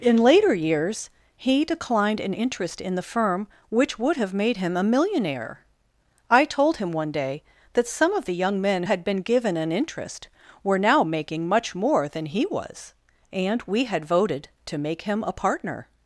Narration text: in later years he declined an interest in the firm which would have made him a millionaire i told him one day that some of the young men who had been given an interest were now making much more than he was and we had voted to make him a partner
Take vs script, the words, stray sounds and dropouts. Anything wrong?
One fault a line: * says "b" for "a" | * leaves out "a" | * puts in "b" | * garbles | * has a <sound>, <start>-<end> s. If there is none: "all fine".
* leaves out "who"